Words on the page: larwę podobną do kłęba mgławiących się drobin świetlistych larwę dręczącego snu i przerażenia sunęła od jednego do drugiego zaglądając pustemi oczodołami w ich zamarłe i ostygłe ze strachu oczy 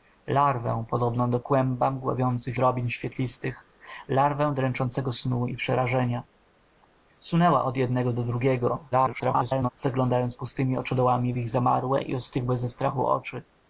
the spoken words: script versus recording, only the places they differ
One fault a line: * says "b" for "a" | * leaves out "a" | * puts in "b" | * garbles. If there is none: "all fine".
* leaves out "się"
* garbles